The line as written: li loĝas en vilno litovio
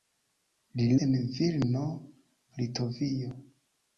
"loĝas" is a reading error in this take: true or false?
true